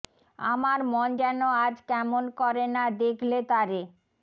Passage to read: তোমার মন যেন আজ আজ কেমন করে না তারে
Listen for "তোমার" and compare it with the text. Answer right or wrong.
wrong